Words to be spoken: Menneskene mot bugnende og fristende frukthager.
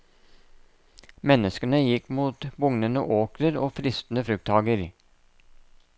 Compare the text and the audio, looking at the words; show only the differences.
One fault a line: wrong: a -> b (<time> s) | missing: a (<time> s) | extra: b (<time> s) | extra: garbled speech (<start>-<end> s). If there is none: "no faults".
extra: gikk (1.8 s)
extra: åkrer (3.2 s)